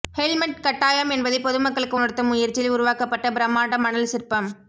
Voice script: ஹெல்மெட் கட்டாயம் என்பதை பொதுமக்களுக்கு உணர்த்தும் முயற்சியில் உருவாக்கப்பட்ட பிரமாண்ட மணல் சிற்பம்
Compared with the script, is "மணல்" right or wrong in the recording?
right